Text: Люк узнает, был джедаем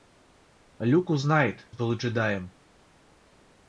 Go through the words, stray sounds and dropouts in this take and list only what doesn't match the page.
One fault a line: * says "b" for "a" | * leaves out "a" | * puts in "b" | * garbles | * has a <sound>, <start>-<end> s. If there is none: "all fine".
all fine